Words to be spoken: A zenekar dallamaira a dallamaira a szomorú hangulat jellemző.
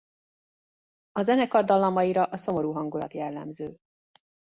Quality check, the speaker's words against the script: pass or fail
fail